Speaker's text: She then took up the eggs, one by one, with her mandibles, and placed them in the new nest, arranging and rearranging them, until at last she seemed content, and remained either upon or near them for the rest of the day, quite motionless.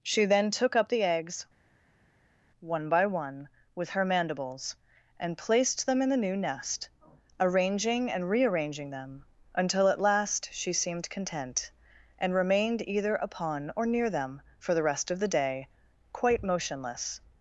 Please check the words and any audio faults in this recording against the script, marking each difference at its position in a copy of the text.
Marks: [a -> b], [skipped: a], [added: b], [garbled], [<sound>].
She then took up the eggs, one by one, with her mandibles, and placed them in the new nest, arranging and rearranging them, until at last she seemed content, and remained either upon or near them for the rest of the day, quite motionless.